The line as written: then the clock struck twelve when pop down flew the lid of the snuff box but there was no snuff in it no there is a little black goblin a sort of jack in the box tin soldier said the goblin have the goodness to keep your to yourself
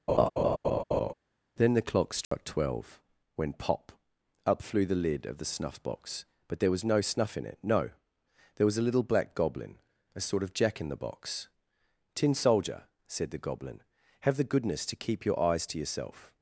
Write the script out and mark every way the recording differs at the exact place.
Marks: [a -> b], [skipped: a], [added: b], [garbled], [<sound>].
[laugh] then the clock struck [dropout] twelve when pop [down -> up] flew the lid of the snuff box but there was no snuff in it no there [is -> was] a little black goblin a sort of jack in the box tin soldier said the goblin have the goodness to keep your [added: eyes] to yourself